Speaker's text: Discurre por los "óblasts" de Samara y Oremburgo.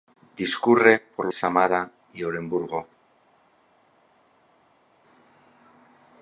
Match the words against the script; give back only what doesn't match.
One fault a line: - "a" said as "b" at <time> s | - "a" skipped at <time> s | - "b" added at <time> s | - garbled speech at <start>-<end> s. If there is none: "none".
- "los óblasts de" skipped at 1.3 s